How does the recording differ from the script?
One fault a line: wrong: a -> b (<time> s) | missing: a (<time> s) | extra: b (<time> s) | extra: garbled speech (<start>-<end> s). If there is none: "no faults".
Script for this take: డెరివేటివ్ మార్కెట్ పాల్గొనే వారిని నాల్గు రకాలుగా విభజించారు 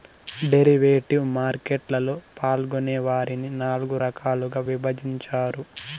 extra: లలో (1.9 s)